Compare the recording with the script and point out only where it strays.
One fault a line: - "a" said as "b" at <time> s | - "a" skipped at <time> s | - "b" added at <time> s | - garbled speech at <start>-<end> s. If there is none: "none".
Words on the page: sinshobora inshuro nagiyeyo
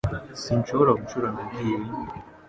none